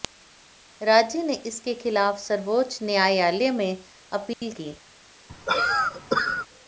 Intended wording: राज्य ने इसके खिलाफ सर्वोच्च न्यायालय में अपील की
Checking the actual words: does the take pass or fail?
pass